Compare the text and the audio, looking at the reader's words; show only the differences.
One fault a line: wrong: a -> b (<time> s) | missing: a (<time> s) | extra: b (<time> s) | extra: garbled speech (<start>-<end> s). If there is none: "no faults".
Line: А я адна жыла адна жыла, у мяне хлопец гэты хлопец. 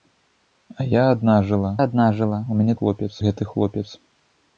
no faults